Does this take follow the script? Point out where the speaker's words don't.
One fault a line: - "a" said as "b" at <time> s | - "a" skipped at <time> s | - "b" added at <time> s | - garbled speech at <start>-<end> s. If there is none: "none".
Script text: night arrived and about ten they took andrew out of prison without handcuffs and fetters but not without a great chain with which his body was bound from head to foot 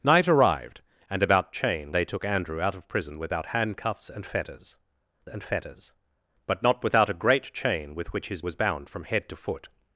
- "ten" said as "chain" at 1.5 s
- "and fetters" added at 5.3 s
- "body" skipped at 8.4 s